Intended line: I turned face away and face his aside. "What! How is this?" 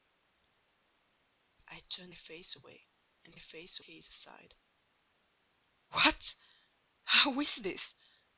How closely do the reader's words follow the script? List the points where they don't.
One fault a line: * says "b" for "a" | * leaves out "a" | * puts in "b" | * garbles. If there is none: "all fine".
all fine